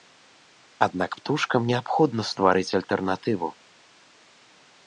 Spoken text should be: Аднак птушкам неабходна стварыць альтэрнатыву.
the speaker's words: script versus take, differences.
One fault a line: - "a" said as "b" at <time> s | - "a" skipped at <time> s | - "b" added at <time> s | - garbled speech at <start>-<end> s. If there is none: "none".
none